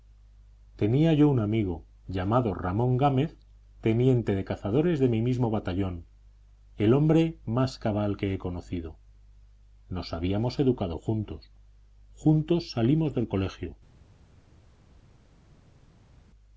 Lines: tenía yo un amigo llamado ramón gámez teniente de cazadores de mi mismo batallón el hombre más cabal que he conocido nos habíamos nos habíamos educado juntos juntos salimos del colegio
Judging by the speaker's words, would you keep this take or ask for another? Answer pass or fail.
fail